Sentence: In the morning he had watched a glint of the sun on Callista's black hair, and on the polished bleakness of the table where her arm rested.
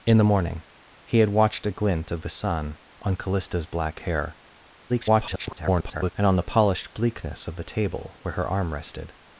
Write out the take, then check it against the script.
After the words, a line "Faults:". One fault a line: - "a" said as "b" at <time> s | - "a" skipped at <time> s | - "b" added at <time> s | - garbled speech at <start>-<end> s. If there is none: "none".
In the morning he had watched a glint of the sun on Callista's black hair, [garbled] and on the polished bleakness of the table where her arm rested.
Faults:
- garbled speech at 4.9-6.1 s